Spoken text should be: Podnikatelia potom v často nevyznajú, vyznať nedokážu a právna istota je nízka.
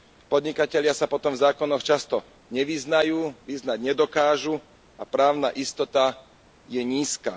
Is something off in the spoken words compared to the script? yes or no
yes